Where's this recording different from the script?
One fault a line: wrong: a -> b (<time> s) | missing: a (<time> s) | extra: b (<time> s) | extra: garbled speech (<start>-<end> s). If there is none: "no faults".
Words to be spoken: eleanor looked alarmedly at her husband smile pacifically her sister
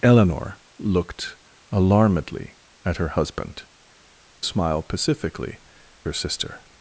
no faults